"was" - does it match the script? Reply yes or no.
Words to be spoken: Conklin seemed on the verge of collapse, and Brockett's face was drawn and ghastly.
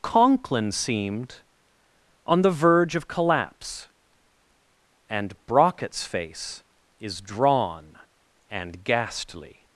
no